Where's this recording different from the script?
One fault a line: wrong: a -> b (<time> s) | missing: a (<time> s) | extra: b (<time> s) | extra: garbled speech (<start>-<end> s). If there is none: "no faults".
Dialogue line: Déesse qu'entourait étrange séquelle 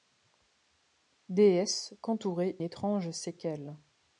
no faults